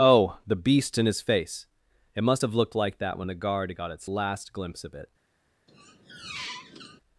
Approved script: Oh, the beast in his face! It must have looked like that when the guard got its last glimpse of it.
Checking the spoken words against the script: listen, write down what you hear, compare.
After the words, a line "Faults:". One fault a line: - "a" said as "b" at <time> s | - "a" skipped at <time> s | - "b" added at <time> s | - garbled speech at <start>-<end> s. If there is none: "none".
Oh, the beast in his face! It must have looked like that when the guard got its last glimpse of it.
Faults:
none